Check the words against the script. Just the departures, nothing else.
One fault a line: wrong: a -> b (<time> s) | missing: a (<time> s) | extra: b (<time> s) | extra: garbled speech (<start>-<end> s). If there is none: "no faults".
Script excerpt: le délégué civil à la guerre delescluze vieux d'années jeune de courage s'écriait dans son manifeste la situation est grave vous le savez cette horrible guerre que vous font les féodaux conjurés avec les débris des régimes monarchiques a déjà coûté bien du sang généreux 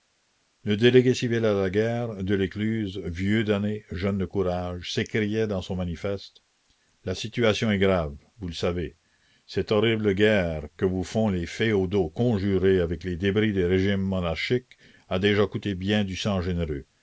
no faults